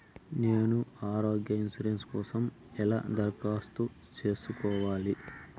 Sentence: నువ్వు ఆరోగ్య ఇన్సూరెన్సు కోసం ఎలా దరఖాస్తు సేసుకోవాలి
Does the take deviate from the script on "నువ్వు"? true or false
true